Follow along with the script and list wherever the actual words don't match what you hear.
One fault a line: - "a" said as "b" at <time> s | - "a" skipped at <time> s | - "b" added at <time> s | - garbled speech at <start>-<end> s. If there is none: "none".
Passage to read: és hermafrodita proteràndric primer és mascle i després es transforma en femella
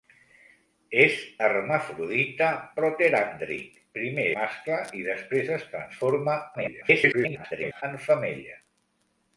- "és" skipped at 4.3 s
- garbled speech at 6.5-7.8 s